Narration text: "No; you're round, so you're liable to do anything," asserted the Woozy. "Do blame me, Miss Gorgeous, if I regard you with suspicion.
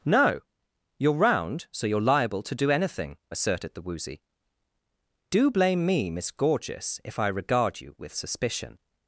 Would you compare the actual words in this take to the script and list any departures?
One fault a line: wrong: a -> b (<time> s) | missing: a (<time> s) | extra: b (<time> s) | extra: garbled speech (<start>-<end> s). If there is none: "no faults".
no faults